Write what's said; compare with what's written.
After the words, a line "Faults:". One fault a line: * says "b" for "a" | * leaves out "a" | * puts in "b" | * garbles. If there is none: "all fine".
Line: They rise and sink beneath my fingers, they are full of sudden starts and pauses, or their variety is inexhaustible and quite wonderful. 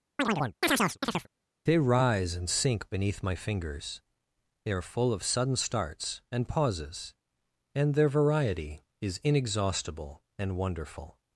They rise and sink beneath my fingers, they are full of sudden starts and pauses, and their variety is inexhaustible and wonderful.
Faults:
* says "and" for "or"
* leaves out "quite"